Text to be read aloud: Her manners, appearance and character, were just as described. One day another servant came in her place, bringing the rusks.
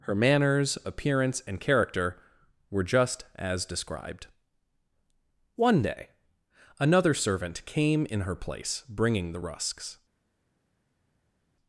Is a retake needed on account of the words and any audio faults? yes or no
no